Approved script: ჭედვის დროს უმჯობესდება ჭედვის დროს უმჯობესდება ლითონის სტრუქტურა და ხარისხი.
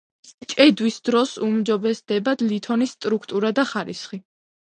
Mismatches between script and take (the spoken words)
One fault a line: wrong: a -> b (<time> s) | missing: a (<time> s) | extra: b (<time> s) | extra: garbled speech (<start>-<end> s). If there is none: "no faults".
missing: ჭედვის დროს უმჯობესდება (2.4 s)